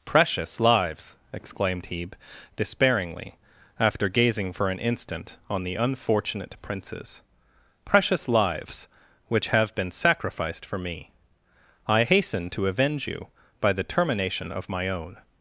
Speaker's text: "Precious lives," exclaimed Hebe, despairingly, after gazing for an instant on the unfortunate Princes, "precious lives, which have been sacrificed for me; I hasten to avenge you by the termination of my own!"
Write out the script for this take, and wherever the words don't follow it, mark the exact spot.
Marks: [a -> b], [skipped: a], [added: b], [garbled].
"Precious lives," exclaimed Hebe, despairingly, after gazing for an instant on the unfortunate Princes, "precious lives, which have been sacrificed for me; I hasten to avenge you by the termination of my own!"